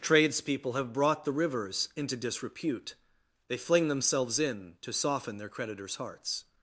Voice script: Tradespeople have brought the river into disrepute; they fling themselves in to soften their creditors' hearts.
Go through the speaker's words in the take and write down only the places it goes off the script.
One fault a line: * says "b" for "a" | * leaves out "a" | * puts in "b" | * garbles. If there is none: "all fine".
* says "rivers" for "river"